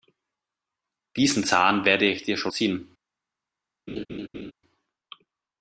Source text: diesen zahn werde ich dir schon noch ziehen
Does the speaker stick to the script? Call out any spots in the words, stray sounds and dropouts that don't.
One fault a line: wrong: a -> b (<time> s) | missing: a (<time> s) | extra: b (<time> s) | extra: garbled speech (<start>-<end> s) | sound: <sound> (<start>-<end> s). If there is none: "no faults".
missing: noch (2.5 s)
sound: laugh (3.9-4.5 s)